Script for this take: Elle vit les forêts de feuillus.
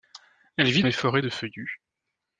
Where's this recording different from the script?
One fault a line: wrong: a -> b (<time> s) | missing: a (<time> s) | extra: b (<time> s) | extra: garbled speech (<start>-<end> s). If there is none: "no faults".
no faults